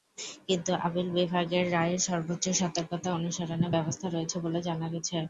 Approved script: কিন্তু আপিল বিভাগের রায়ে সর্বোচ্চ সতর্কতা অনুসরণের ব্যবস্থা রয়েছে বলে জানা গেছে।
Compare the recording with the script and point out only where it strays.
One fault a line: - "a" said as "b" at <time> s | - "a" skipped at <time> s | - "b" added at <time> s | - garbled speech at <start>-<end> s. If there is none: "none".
none